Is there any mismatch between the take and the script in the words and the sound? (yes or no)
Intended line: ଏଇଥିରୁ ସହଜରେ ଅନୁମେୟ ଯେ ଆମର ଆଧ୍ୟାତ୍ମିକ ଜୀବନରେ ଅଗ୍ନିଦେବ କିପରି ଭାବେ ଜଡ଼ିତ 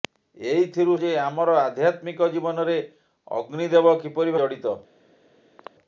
yes